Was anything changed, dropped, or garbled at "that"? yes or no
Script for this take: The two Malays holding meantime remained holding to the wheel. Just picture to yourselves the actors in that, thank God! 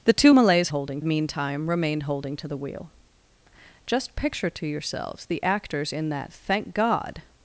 no